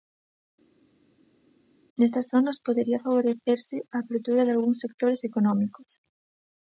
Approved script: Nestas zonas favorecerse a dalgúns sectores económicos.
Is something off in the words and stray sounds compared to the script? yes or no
yes